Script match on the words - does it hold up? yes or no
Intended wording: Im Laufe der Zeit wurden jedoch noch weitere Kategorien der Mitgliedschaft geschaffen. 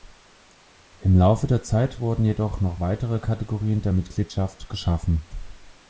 yes